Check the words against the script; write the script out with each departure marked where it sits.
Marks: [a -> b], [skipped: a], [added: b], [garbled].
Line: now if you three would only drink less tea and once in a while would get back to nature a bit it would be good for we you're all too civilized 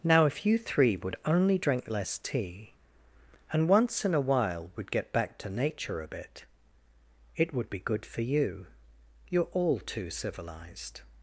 now if you three would only drink less tea and once in a while would get back to nature a bit it would be good for [we -> you] you're all too civilized